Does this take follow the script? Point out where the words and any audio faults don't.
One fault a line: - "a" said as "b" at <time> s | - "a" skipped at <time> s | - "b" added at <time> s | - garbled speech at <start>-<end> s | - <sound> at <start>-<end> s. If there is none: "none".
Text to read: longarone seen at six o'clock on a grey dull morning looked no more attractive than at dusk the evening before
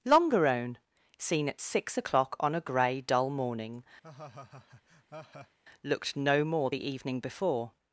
- laugh at 4.0-5.6 s
- "attractive than at dusk" skipped at 6.7 s